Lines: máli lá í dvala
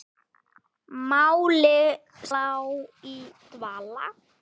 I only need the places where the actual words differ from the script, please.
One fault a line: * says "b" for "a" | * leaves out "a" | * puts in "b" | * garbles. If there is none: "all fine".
all fine